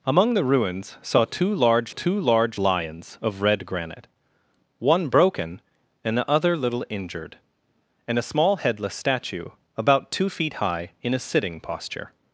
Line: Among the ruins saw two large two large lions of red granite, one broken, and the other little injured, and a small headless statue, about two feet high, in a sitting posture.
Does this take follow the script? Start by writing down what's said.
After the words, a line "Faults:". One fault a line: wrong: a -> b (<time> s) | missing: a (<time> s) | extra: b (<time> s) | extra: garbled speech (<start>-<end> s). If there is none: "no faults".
Among the ruins saw two large two large lions of red granite, one broken, and the other little injured, and a small headless statue, about two feet high, in a sitting posture.
Faults:
no faults